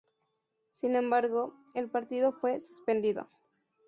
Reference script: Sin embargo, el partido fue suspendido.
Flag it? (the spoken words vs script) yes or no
no